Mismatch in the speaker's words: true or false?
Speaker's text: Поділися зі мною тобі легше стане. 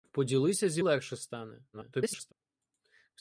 true